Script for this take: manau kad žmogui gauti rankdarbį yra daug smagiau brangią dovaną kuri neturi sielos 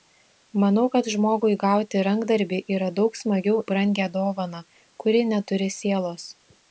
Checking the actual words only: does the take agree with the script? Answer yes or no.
yes